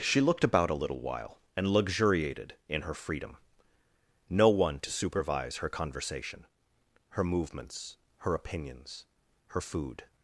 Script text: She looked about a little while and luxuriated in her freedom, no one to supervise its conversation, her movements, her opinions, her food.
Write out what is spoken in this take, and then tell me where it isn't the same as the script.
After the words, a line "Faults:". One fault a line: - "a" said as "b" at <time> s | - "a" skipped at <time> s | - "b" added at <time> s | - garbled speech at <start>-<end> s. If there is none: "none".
She looked about a little while and luxuriated in her freedom, no one to supervise her conversation, her movements, her opinions, her food.
Faults:
- "its" said as "her" at 5.6 s